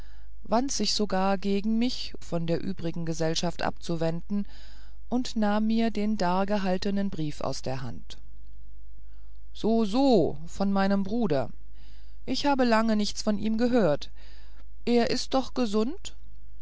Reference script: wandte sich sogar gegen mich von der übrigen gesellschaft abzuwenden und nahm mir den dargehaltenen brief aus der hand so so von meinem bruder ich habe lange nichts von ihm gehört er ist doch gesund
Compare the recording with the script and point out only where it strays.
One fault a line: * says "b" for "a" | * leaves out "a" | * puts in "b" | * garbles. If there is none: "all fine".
all fine